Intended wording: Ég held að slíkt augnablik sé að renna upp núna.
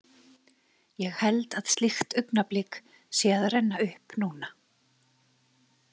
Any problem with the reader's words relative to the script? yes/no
no